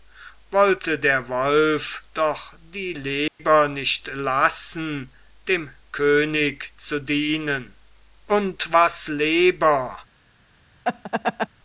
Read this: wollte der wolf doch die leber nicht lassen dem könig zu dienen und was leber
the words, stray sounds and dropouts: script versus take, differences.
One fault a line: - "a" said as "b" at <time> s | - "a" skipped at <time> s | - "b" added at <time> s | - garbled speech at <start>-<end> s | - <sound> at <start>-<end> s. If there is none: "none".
- dropout at 3.3-3.4 s
- laugh at 10.8-11.5 s